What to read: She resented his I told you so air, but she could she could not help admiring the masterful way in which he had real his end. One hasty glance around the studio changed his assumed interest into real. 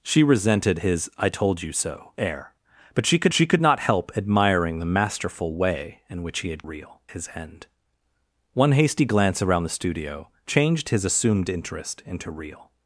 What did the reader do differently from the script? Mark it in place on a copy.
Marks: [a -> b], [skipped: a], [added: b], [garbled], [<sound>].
She resented his I told you so air, but she could she could not help admiring the masterful way in which he had real his end. One hasty glance around the studio changed his assumed interest into real.